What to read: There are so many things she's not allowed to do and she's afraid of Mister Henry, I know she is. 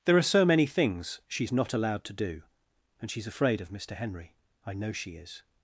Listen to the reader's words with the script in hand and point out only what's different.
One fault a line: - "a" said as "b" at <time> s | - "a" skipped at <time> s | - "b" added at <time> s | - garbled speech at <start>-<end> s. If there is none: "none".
none